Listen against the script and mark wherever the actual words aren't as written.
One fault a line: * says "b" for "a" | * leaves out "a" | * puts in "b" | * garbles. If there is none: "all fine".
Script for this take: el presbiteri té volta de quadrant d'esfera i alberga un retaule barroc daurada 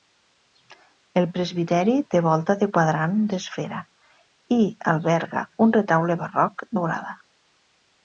all fine